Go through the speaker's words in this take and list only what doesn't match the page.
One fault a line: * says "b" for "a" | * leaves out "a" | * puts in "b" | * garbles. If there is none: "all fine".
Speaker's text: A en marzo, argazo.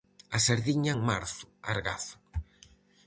* puts in "sardiña"